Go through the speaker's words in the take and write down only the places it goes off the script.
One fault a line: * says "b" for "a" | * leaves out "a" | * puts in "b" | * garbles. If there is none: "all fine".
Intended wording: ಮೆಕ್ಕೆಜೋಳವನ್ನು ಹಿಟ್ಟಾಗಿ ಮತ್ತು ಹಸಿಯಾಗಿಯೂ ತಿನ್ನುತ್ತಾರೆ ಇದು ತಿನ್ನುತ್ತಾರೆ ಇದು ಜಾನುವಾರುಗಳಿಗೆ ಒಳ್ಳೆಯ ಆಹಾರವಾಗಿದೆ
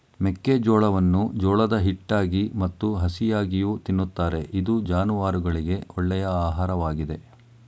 * puts in "ಜೋಳದ"
* leaves out "ತಿನ್ನುತ್ತಾರೆ ಇದು"